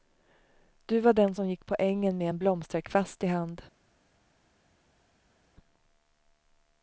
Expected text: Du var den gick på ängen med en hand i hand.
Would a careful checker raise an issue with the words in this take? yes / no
yes